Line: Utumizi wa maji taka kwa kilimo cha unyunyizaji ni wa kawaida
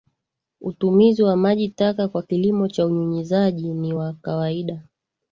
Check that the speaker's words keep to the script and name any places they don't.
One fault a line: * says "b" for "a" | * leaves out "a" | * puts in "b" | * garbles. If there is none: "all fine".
all fine